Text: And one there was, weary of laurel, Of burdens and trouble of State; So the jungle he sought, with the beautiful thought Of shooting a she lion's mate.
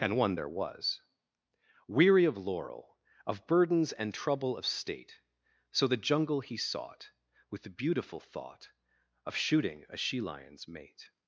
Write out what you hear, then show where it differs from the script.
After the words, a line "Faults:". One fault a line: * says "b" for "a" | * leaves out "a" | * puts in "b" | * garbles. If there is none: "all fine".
And one there was, weary of laurel, Of burdens and trouble of State; So the jungle he sought, with the beautiful thought Of shooting a she lion's mate.
Faults:
all fine